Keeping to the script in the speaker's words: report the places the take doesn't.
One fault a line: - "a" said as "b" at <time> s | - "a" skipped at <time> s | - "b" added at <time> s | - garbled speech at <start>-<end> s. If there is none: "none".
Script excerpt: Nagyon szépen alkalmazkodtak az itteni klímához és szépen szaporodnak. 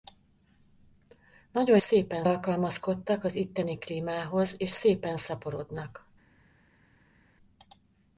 none